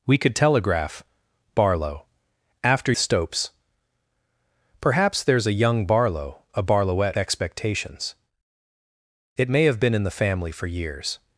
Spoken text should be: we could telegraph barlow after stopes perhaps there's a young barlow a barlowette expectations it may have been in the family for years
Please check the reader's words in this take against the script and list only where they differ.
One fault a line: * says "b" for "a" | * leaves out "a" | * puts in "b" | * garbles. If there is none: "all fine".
all fine